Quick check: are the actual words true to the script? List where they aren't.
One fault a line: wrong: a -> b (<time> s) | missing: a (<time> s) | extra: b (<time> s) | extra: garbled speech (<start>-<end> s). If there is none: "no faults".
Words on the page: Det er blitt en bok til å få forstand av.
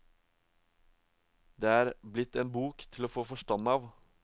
no faults